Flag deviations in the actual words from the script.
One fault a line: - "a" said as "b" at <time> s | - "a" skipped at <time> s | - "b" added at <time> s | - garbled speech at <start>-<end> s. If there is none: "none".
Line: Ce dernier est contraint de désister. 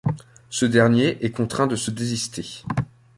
- "se" added at 1.7 s